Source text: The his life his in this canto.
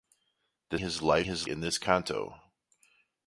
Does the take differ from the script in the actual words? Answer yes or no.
no